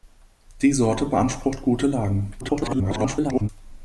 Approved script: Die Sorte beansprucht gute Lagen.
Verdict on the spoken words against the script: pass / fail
fail